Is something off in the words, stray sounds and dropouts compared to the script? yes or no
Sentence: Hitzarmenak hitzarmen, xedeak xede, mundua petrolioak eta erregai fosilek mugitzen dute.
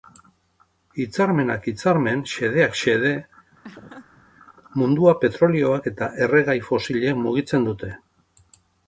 yes